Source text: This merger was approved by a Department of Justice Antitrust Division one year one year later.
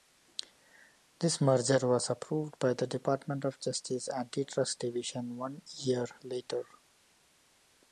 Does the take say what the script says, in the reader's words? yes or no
no